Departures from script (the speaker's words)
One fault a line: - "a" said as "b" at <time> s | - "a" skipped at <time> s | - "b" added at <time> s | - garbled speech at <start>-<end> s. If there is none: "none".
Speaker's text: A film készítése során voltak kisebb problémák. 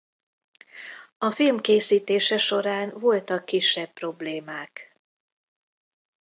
none